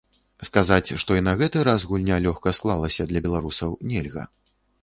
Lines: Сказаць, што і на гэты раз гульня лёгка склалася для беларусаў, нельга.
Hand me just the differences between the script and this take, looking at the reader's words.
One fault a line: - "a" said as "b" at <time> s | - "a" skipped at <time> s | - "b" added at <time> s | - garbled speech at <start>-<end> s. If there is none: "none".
none